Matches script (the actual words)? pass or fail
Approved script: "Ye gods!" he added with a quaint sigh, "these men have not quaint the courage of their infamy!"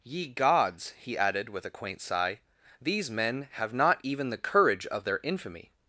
fail